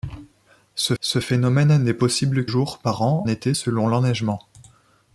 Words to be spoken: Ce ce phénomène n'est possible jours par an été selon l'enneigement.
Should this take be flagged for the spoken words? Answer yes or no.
no